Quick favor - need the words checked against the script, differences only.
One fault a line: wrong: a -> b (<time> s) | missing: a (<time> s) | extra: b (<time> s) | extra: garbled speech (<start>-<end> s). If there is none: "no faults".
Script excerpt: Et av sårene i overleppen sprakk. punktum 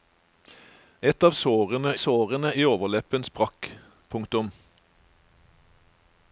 extra: sårene (2.0 s)